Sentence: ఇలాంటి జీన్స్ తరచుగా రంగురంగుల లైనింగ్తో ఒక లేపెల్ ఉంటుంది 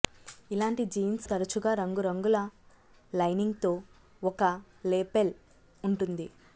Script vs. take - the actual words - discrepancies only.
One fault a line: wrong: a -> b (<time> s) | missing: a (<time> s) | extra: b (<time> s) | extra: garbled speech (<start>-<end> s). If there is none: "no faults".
no faults